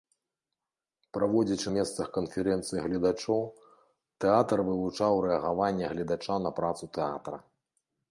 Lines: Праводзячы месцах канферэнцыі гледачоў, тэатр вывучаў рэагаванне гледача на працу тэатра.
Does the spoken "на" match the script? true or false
true